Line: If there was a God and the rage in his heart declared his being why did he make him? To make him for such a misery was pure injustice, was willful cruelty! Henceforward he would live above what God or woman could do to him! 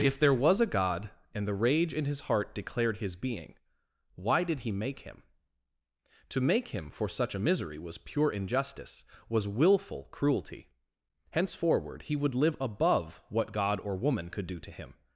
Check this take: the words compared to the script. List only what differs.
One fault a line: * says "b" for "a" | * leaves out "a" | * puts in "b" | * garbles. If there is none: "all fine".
all fine